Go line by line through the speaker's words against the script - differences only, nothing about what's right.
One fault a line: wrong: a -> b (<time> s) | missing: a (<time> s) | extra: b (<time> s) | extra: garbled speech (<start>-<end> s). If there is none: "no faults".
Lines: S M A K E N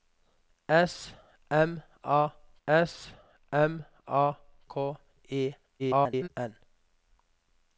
extra: s M A (2.7 s)
extra: garbled speech (5.8-6.3 s)